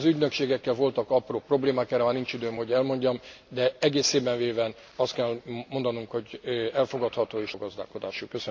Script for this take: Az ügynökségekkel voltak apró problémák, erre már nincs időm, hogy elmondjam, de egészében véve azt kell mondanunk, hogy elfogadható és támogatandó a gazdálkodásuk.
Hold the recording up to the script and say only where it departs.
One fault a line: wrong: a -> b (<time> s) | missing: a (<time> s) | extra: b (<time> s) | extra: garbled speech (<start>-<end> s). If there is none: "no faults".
missing: támogatandó (7.5 s)